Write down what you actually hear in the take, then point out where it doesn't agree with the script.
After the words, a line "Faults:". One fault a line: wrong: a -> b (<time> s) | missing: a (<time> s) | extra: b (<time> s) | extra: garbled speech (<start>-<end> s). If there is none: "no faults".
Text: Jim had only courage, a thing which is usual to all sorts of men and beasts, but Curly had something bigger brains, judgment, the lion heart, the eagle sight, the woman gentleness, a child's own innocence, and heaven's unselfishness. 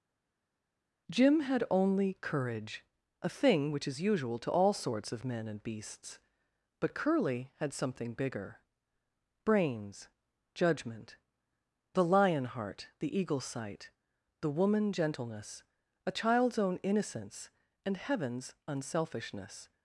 Jim had only courage, a thing which is usual to all sorts of men and beasts, but Curly had something bigger brains, judgment, the lion heart, the eagle sight, the woman gentleness, a child's own innocence, and heaven's unselfishness.
Faults:
no faults